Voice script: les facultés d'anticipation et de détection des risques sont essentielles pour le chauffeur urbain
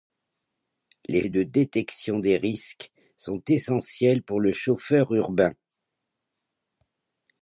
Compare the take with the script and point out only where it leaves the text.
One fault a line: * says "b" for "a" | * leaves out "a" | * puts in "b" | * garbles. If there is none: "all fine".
* leaves out "facultés d'anticipation"